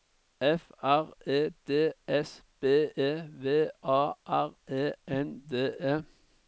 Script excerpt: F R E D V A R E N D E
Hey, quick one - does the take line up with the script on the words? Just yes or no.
no